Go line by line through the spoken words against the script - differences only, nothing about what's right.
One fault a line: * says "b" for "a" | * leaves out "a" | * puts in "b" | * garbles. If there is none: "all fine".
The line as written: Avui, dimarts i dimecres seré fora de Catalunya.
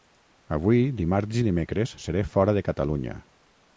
all fine